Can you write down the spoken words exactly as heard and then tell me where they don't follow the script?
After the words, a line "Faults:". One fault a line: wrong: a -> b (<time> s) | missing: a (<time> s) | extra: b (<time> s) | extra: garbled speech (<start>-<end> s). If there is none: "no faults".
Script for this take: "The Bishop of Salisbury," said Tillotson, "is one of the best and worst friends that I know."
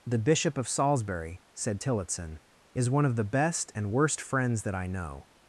"The Bishop of Salisbury," said Tillotson, "is one of the best and worst friends that I know."
Faults:
no faults